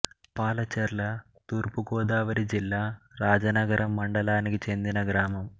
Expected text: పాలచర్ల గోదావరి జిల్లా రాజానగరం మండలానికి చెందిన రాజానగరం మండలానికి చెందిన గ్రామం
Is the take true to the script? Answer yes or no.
no